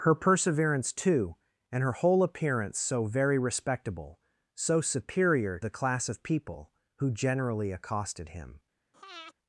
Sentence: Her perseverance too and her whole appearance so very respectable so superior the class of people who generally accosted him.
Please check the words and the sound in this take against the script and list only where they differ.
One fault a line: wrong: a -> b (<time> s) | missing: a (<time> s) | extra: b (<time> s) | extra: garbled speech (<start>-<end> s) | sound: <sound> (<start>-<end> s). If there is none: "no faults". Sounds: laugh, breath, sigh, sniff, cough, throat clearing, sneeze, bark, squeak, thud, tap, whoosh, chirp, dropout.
sound: breath (8.9-9.3 s)